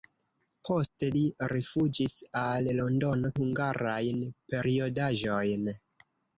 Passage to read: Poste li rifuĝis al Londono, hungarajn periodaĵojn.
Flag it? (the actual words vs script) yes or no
no